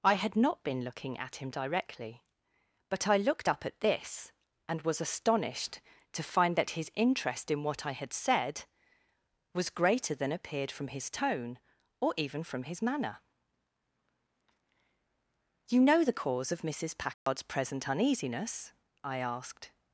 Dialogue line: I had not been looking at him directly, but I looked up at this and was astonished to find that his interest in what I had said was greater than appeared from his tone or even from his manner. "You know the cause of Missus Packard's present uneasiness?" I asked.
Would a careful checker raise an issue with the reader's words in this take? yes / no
no